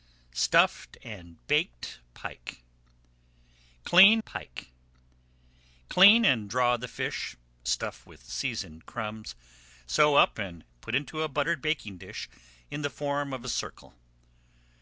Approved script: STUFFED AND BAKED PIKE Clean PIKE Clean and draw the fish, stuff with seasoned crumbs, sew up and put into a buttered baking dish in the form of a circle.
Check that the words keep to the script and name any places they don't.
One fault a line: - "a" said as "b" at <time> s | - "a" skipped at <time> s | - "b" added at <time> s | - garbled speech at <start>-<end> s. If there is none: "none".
none